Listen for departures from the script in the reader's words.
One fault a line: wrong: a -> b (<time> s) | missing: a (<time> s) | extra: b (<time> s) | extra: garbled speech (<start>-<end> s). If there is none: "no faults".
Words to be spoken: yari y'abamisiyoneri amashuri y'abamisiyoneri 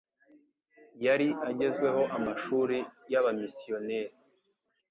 wrong: y'abamisiyoneri -> agezweho (1.5 s)